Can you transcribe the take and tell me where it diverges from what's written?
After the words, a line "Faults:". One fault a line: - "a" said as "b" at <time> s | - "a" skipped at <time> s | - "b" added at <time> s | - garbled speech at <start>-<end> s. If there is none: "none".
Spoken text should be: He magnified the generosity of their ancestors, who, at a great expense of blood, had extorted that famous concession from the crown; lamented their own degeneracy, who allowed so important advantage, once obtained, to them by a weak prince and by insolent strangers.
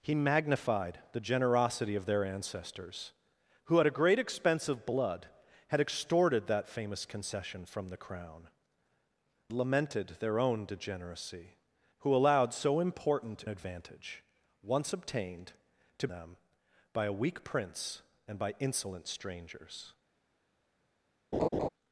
He magnified the generosity of their ancestors, who, at a great expense of blood, had extorted that famous concession from the crown; lamented their own degeneracy, who allowed so important advantage, once obtained, to them by a weak prince and by insolent strangers.
Faults:
none